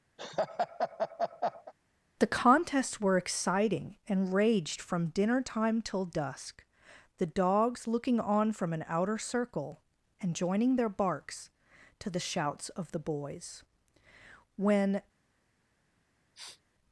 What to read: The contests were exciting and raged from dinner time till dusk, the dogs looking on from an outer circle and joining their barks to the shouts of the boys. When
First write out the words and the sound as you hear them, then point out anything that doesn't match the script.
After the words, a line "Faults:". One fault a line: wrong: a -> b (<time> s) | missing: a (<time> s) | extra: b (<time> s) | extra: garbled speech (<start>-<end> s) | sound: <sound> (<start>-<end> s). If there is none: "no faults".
The contests were exciting and raged from dinner time till dusk, the dogs looking on from an outer circle and joining their barks to the shouts of the boys. When
Faults:
sound: laugh (0.2-1.7 s)
sound: sniff (16.3-16.6 s)